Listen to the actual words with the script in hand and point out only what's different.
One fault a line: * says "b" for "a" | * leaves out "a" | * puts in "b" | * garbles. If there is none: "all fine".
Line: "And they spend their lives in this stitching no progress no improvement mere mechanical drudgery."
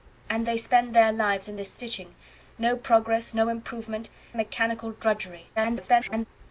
* leaves out "mere"
* garbles